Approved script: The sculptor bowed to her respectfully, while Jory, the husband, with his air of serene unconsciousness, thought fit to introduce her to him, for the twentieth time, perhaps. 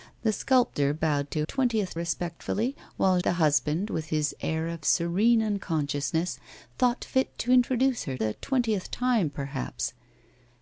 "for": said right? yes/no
no